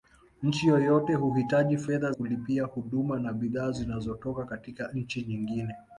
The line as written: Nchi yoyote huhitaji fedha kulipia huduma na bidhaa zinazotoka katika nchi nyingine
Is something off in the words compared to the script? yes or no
no